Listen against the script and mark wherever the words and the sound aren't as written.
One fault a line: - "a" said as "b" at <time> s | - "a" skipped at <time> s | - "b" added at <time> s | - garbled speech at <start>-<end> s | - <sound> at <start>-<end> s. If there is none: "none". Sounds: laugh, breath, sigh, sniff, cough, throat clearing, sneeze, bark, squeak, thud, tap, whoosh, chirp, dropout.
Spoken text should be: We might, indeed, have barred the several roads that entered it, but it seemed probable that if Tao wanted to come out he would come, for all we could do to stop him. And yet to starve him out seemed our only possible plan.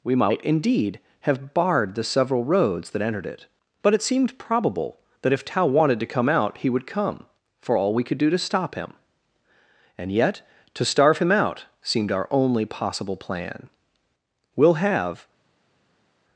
- "We'll have" added at 14.6 s